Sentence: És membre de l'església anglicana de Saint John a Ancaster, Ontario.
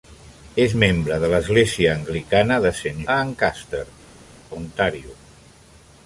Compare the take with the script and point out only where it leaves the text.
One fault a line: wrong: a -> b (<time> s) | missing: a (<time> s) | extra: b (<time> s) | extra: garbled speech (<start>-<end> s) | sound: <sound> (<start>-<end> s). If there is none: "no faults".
missing: John (3.0 s)